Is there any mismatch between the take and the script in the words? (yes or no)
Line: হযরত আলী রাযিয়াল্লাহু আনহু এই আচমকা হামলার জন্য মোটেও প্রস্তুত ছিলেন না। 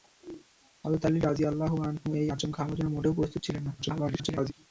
yes